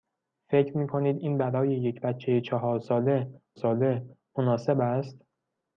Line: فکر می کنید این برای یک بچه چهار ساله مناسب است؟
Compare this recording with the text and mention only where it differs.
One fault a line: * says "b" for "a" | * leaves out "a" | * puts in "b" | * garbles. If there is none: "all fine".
* puts in "ساله"